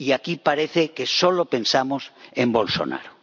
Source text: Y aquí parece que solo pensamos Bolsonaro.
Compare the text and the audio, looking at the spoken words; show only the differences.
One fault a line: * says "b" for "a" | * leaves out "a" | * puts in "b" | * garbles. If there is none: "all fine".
* puts in "en"